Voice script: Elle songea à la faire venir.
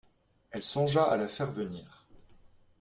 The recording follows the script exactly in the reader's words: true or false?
true